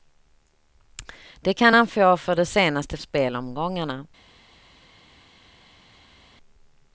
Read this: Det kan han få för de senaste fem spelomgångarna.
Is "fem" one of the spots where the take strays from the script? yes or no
yes